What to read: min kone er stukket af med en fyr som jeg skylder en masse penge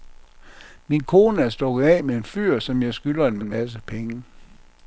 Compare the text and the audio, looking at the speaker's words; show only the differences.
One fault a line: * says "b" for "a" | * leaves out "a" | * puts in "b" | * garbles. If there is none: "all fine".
* puts in "en"